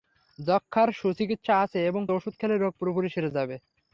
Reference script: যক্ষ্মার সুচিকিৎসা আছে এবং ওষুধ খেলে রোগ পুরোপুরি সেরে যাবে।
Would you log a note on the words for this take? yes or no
no